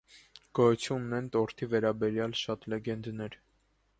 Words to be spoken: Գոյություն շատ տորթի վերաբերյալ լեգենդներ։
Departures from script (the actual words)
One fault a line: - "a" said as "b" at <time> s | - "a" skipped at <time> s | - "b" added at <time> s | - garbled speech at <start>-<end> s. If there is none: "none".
- "շատ" said as "ունեն" at 1.1 s
- "շատ" added at 2.4 s